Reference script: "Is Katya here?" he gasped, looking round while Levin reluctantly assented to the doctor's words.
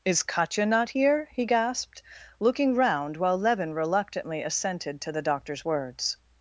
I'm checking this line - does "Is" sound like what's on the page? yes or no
yes